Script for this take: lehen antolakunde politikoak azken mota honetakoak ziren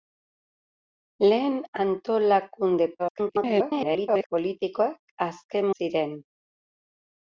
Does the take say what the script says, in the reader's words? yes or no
no